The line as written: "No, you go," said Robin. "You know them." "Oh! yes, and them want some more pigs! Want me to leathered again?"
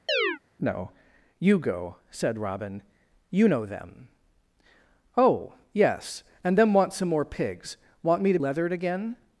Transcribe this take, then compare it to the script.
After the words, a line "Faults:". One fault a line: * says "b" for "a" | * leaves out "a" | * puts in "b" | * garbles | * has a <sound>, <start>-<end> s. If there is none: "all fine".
"No, you go," said Robin. "You know them." "Oh! yes, and them want some more pigs! Want me to leathered again?"
Faults:
* has a chirp, 0.1-0.4 s